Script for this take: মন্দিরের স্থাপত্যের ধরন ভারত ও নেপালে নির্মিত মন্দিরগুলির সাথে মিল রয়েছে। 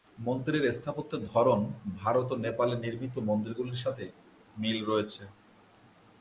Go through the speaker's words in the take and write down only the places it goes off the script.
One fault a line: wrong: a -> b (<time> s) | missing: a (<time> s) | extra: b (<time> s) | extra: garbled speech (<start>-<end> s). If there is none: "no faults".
no faults